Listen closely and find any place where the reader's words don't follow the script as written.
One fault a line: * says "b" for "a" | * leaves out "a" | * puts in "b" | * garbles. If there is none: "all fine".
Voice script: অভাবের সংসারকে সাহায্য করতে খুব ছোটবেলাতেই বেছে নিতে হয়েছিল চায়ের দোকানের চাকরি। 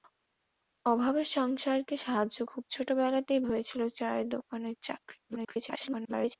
* leaves out "করতে"
* leaves out "বেছে নিতে"
* garbles